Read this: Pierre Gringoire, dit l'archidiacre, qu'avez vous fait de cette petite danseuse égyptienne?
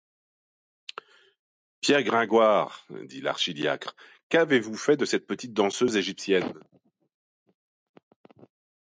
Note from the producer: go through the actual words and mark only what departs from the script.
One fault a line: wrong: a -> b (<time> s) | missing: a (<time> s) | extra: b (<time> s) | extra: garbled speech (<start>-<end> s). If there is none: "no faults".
no faults